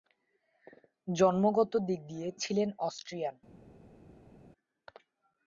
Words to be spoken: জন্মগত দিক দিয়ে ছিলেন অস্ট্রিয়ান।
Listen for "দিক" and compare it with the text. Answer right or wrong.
right